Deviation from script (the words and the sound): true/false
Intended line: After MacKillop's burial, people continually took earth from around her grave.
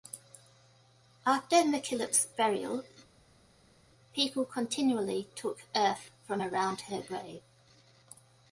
false